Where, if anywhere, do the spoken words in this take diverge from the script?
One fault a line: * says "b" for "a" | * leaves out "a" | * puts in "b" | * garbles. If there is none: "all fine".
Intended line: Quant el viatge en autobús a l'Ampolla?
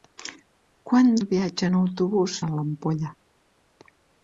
all fine